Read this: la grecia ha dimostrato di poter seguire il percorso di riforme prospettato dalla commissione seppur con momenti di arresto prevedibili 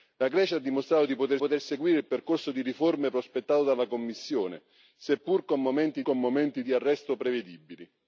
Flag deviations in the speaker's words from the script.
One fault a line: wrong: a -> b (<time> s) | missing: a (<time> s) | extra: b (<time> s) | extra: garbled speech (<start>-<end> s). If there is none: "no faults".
extra: poter (1.4 s)
extra: con momenti (6.0 s)